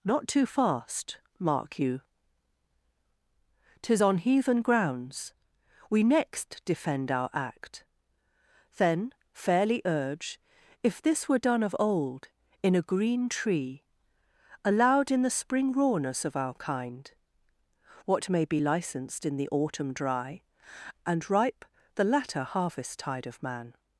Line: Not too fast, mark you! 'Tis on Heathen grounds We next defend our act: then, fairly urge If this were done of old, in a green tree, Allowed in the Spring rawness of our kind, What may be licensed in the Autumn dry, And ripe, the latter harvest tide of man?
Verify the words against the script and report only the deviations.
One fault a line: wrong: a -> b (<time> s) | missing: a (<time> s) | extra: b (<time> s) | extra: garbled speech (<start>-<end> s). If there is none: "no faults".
no faults